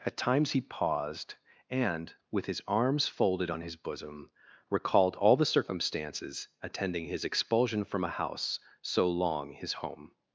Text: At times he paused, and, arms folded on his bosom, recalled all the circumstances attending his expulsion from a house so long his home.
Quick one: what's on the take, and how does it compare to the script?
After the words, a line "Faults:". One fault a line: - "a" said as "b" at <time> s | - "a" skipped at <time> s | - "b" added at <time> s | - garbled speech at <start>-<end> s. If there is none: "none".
At times he paused, and, with his arms folded on his bosom, recalled all the circumstances attending his expulsion from a house so long his home.
Faults:
- "with his" added at 2.3 s